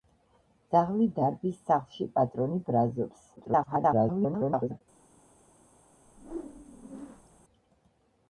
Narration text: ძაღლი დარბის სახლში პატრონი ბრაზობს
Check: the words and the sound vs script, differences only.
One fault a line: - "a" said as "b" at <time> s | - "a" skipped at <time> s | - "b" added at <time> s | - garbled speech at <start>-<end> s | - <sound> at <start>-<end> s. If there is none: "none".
- garbled speech at 3.4-4.8 s
- whoosh at 6.0-7.4 s